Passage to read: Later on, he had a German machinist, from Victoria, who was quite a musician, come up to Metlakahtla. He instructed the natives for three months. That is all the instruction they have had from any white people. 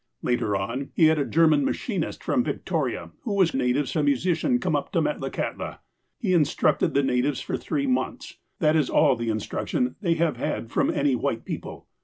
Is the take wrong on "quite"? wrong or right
wrong